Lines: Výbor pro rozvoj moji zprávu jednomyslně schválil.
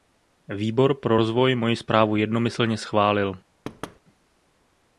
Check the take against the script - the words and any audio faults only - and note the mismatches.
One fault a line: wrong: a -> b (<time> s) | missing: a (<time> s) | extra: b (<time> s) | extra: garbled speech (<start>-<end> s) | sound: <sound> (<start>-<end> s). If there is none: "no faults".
sound: thud (3.6-4.0 s)